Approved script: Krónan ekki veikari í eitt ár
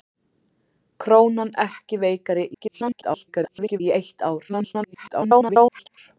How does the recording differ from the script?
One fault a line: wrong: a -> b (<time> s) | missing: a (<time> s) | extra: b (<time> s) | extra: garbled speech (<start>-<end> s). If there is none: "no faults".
extra: garbled speech (2.5-3.8 s)
extra: garbled speech (4.5-6.0 s)